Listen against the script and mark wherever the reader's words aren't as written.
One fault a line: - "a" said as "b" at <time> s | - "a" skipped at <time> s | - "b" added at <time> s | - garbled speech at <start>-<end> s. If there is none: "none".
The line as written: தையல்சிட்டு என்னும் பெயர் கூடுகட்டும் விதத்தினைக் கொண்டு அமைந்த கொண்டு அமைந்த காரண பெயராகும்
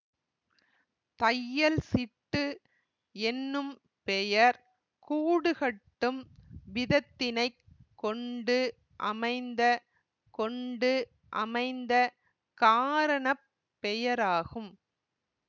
none